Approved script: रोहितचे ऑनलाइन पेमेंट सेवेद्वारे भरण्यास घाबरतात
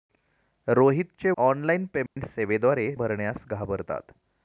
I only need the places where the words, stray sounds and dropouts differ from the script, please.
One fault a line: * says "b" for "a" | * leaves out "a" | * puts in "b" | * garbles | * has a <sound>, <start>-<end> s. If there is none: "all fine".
* has a dropout, 2.1-2.2 s